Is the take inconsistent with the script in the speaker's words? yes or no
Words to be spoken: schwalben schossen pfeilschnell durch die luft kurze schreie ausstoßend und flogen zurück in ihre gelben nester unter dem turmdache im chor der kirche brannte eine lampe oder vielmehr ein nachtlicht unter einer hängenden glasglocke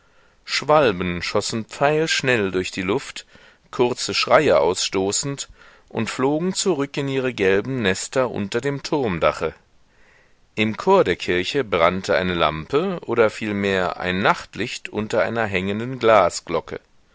no